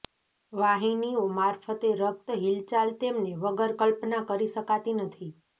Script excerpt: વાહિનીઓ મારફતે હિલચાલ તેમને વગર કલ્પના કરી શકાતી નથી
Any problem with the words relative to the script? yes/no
yes